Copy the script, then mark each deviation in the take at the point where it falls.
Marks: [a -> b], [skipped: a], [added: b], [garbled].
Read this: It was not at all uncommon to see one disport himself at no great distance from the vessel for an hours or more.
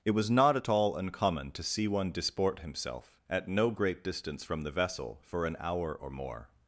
It was not at all uncommon to see one disport himself at no great distance from the vessel for an [hours -> hour] or more.